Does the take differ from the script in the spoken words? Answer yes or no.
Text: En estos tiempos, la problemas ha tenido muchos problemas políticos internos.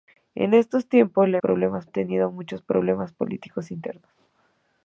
no